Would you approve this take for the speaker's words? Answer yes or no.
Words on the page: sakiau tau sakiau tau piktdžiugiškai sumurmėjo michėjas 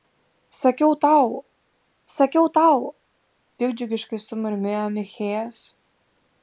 yes